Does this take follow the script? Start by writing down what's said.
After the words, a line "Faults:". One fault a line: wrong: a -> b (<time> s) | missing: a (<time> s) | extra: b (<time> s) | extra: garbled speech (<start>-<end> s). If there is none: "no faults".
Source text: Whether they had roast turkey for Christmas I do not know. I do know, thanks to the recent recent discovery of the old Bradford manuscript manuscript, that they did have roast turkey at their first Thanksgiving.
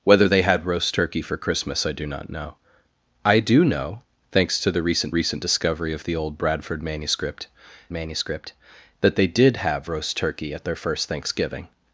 Whether they had roast turkey for Christmas I do not know. I do know, thanks to the recent recent discovery of the old Bradford manuscript manuscript, that they did have roast turkey at their first Thanksgiving.
Faults:
no faults